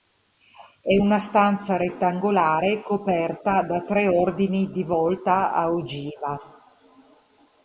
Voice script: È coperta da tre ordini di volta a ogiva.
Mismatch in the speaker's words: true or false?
true